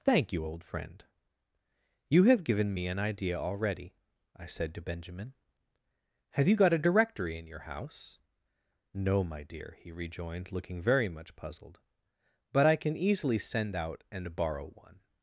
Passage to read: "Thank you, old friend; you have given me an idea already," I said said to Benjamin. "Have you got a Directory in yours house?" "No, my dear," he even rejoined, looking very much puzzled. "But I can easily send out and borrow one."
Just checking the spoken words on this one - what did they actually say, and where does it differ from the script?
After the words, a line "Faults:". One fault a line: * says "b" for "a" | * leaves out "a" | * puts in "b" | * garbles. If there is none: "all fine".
"Thank you, old friend; you have given me an idea already," I said to Benjamin. "Have you got a Directory in your house?" "No, my dear," he rejoined, looking very much puzzled. "But I can easily send out and borrow one."
Faults:
* leaves out "said"
* says "your" for "yours"
* leaves out "even"